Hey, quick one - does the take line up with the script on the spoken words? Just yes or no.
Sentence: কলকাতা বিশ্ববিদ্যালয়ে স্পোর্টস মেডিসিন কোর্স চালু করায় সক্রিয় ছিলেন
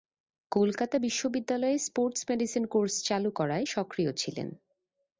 yes